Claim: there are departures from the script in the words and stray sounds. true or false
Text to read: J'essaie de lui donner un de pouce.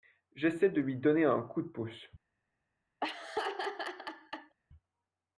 true